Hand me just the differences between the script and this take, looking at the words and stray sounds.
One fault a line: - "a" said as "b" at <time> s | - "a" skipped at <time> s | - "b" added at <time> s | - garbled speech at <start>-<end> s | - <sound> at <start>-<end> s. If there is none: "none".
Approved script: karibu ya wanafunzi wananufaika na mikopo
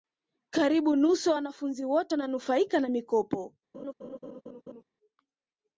- "nusu" added at 0.9 s
- "wote" added at 1.8 s
- laugh at 3.7-4.8 s